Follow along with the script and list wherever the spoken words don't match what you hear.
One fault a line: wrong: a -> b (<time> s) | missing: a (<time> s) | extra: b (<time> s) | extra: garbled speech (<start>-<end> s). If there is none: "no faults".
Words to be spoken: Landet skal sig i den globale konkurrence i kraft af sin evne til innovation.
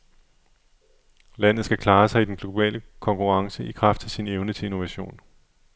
extra: klare (1.8 s)